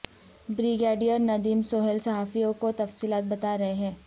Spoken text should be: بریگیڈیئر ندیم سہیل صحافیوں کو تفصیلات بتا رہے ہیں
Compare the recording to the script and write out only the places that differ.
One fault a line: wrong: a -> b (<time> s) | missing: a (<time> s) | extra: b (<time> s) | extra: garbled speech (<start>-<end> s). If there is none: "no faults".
no faults